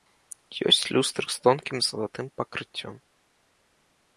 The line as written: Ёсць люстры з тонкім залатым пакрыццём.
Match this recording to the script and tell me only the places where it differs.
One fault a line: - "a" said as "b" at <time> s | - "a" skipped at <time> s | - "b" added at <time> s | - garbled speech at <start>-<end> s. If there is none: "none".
none